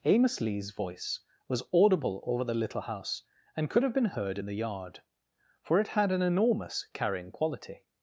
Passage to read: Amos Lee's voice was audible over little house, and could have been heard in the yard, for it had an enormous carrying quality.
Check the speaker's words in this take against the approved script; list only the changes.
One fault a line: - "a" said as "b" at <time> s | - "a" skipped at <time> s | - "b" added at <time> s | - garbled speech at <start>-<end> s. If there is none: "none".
- "the" added at 2.4 s